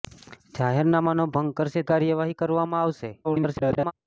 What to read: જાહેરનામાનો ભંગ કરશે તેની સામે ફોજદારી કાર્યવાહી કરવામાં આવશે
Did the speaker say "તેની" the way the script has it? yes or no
no